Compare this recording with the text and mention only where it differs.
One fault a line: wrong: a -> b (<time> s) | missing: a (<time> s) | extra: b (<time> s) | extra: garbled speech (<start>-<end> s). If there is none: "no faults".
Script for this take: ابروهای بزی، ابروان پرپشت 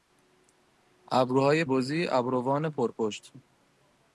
no faults